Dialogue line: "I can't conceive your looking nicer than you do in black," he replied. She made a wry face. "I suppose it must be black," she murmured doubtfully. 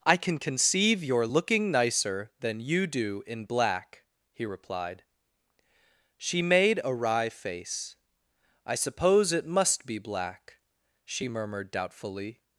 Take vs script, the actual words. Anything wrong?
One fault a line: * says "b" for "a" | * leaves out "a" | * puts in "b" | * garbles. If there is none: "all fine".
* says "can" for "can't"